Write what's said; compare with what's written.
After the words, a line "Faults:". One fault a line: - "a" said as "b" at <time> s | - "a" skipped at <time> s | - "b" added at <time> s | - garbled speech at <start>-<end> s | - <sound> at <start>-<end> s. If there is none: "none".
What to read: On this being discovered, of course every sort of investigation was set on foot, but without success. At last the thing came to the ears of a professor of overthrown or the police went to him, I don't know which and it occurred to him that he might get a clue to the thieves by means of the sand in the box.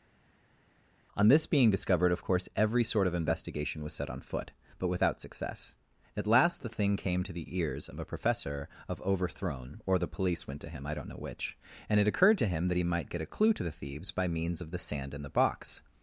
On this being discovered, of course every sort of investigation was set on foot, but without success. At last the thing came to the ears of a professor of overthrown or the police went to him, I don't know which and it occurred to him that he might get a clue to the thieves by means of the sand in the box.
Faults:
none